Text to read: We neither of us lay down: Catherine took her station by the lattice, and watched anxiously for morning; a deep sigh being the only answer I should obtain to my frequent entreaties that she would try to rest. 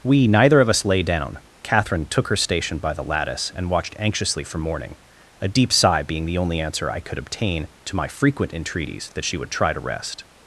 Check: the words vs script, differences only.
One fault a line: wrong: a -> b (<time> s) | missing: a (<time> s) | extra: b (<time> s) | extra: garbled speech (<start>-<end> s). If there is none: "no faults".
wrong: should -> could (7.0 s)